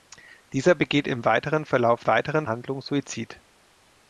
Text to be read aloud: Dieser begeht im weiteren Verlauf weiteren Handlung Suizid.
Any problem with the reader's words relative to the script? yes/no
no